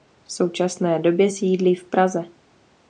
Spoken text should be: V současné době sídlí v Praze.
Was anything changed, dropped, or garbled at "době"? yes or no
no